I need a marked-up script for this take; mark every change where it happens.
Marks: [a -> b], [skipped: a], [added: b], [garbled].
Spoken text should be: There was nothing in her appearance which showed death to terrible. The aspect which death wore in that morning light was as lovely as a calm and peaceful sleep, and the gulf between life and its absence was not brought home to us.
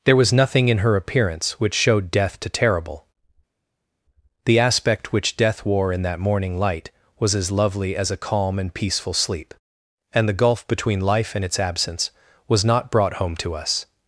There was nothing in her appearance which showed death to terrible. The aspect which death wore in that morning light was as lovely as a calm and peaceful sleep, and the gulf between life and its absence was not brought home to us.